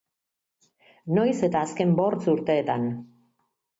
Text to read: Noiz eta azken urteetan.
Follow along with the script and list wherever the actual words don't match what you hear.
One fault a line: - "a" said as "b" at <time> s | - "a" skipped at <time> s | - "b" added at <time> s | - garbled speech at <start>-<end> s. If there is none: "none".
- "bortz" added at 2.0 s